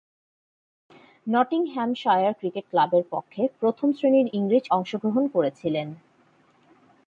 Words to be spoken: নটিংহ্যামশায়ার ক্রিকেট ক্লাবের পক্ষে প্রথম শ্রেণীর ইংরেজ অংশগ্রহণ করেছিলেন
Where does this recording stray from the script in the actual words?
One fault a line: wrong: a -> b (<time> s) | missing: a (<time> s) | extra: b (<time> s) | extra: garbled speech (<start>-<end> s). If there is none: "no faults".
no faults